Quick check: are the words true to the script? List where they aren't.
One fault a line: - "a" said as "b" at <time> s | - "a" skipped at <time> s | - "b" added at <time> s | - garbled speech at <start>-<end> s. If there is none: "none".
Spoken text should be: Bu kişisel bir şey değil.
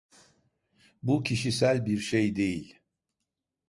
none